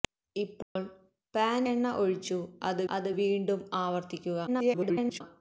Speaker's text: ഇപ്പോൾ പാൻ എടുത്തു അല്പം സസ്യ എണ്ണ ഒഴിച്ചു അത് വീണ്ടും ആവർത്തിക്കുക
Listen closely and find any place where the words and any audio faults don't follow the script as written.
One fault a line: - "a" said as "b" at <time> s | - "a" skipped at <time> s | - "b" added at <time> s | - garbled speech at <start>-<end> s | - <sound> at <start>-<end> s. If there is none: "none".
- dropout at 0.6-0.8 s
- "എടുത്തു അല്പം സസ്യ" skipped at 1.7 s
- "അത്" added at 2.9 s
- garbled speech at 4.5-5.2 s